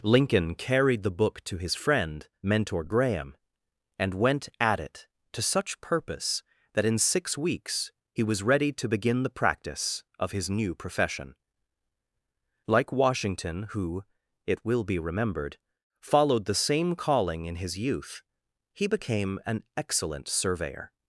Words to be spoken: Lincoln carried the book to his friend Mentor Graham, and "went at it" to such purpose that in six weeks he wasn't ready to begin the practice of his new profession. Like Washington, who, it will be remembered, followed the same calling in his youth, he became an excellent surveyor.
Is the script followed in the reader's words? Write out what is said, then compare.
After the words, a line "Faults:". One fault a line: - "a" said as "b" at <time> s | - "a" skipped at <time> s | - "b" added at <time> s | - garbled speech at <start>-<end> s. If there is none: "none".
Lincoln carried the book to his friend Mentor Graham, and "went at it" to such purpose that in six weeks he was ready to begin the practice of his new profession. Like Washington, who, it will be remembered, followed the same calling in his youth, he became an excellent surveyor.
Faults:
- "wasn't" said as "was" at 8.2 s